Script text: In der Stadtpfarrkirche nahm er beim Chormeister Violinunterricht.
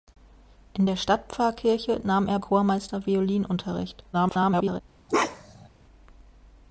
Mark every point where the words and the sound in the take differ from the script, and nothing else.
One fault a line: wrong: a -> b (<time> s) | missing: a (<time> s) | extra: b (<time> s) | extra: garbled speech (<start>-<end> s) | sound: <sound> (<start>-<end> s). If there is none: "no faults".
missing: beim (2.4 s)
extra: garbled speech (4.1-4.8 s)
sound: bark (5.1-5.7 s)